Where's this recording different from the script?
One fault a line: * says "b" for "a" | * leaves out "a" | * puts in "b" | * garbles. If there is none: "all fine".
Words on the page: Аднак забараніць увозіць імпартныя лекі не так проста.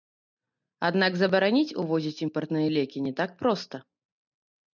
all fine